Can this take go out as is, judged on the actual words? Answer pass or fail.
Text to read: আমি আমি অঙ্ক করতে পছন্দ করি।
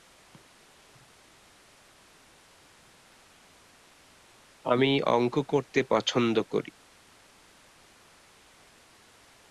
fail